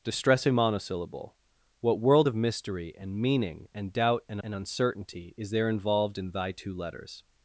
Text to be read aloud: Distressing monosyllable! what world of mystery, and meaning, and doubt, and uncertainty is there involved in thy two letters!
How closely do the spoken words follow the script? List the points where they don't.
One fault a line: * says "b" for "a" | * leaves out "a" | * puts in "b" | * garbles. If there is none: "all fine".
* puts in "and"